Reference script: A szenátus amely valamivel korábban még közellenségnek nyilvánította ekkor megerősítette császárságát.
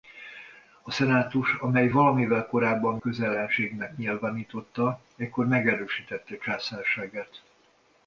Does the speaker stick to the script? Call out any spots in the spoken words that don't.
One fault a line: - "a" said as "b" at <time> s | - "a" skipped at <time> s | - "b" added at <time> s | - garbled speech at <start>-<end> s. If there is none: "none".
- "még" skipped at 3.0 s